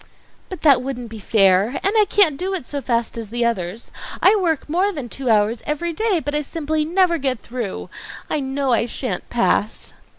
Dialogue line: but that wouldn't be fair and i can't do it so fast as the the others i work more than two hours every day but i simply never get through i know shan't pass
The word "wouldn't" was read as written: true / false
true